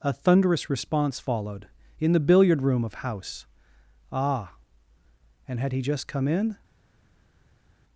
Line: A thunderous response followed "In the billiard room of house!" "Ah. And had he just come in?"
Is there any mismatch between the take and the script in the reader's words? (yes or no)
no